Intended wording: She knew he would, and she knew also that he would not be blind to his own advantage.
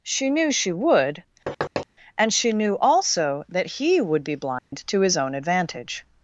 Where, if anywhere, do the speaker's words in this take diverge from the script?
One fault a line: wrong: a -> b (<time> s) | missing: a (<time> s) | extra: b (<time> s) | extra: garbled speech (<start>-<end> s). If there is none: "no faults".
wrong: he -> she (0.5 s)
missing: not (4.2 s)